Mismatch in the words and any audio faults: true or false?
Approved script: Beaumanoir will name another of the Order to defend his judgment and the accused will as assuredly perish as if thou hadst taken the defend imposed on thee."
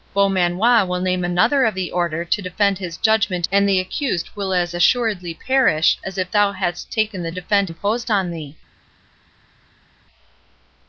false